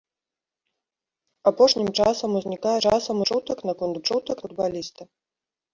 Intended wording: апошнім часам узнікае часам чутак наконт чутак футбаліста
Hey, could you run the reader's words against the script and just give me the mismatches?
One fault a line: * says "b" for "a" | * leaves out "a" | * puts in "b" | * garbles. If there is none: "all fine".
all fine